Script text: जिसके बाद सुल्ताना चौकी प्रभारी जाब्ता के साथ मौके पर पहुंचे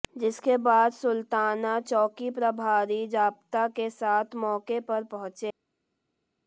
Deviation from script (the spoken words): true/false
false